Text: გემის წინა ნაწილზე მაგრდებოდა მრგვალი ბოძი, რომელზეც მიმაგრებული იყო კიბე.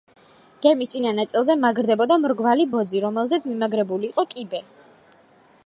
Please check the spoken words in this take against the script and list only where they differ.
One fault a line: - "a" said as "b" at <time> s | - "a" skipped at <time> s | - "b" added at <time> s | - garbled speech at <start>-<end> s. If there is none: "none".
none